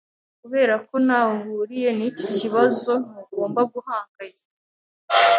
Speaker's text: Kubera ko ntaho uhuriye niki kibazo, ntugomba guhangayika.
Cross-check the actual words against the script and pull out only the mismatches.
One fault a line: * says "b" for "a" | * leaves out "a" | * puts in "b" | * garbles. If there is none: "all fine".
all fine